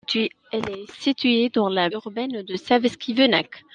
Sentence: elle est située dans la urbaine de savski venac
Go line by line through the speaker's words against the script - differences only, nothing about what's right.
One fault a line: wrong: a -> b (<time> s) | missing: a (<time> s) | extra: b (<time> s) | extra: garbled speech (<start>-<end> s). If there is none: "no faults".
no faults